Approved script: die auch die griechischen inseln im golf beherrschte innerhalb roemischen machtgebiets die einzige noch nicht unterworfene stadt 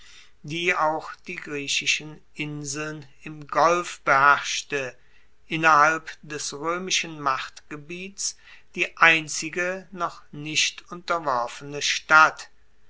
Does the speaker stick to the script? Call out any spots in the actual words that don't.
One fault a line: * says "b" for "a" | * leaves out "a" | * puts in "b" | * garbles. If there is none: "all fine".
* puts in "des"